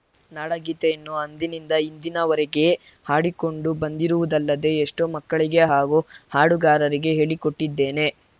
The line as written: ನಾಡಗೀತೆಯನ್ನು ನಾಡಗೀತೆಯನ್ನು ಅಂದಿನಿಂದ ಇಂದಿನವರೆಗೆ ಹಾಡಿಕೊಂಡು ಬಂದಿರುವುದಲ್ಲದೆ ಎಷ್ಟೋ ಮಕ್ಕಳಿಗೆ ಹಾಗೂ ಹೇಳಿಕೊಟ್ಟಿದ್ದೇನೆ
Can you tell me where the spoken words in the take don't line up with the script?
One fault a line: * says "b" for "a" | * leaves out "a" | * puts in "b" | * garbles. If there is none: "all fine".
* leaves out "ನಾಡಗೀತೆಯನ್ನು"
* puts in "ಹಾಡುಗಾರರಿಗೆ"